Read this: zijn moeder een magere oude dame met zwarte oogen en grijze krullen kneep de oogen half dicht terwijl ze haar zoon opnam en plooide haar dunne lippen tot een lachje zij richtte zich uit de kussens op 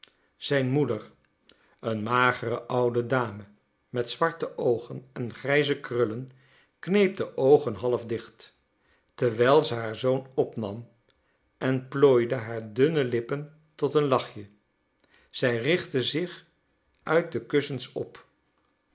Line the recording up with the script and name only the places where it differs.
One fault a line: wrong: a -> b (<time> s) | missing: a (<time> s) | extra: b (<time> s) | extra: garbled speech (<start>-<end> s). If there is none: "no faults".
no faults